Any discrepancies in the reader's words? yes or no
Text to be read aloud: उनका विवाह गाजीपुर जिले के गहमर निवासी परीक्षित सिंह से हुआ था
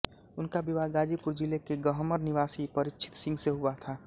no